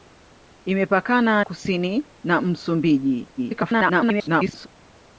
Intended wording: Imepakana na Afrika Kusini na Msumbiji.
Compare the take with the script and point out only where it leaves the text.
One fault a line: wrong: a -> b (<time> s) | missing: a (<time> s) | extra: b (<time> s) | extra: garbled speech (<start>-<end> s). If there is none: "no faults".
missing: na Afrika (1.4 s)
extra: garbled speech (3.4-4.7 s)